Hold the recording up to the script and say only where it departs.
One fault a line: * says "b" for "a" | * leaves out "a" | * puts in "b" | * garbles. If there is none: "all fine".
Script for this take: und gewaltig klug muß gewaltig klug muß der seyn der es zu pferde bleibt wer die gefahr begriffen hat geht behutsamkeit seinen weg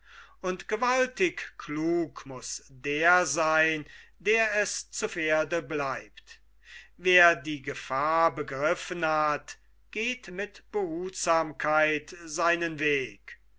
* leaves out "gewaltig klug muß"
* puts in "mit"